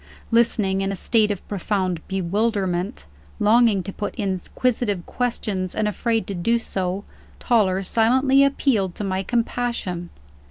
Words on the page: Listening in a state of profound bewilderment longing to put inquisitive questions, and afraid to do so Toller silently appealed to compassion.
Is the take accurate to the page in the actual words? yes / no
no